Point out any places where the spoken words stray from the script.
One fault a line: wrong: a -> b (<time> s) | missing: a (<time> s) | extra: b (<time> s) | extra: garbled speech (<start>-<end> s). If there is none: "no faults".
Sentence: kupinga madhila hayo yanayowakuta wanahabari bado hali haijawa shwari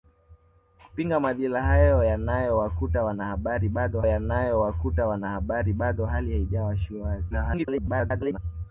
extra: yanayowakuta wanahabari bado (4.0 s)
extra: garbled speech (7.3-8.4 s)